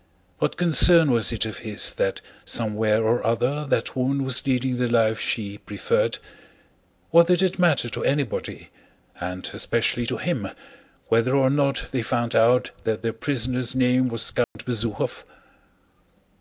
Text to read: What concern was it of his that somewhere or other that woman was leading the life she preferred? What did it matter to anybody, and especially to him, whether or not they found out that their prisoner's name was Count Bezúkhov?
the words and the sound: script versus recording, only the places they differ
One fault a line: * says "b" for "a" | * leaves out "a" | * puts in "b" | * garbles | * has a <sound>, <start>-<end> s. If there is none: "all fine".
* has a dropout, 14.4-14.6 s